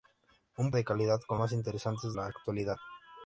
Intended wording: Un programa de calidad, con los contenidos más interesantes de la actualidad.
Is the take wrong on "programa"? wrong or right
wrong